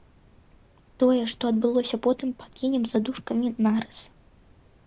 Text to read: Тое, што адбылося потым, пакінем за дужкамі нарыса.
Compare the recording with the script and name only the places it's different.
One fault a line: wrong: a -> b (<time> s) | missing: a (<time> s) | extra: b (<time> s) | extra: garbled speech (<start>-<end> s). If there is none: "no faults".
no faults